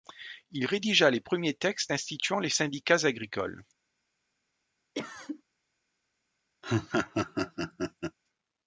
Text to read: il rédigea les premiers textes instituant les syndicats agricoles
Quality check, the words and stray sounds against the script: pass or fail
fail